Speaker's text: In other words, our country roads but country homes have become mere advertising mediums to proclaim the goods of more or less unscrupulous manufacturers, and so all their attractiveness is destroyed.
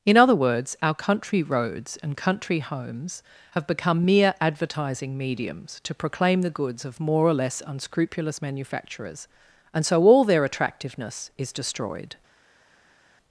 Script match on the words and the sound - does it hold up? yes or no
no